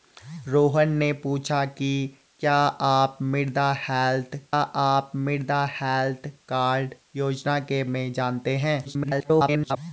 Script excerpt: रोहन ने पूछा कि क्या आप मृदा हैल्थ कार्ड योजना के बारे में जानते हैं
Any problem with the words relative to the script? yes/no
yes